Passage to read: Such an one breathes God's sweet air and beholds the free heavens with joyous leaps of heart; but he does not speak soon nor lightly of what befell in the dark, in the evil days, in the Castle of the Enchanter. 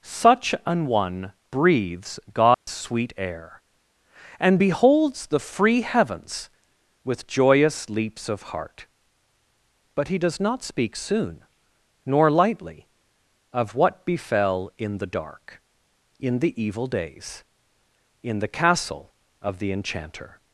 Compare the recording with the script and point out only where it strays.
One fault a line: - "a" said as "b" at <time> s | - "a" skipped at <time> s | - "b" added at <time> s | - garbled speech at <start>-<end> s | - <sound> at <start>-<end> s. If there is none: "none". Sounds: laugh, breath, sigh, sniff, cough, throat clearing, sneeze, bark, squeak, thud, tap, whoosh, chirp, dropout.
- dropout at 2.5-2.7 s